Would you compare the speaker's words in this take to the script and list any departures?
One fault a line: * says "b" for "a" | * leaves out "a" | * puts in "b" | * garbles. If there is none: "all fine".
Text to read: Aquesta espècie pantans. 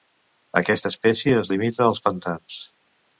* puts in "es limita als"